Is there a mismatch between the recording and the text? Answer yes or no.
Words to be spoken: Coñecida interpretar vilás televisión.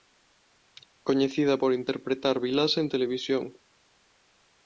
yes